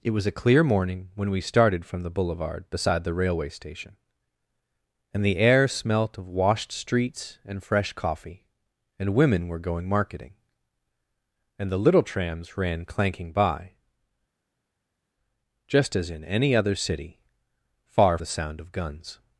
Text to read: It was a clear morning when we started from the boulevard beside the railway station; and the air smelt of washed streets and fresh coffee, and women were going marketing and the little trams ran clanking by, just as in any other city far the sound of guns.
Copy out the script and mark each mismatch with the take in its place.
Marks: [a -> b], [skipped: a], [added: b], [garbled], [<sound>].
It was a clear morning when we started from the boulevard beside the railway station; and the air smelt of washed streets and fresh coffee, and women were going marketing and the little trams ran clanking by, just as in any other city far the sound of guns.